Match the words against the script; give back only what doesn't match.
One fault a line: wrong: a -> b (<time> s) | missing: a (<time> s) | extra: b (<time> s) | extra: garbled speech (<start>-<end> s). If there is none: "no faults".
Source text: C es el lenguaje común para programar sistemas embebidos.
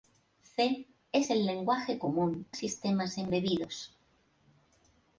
missing: para programar (2.5 s)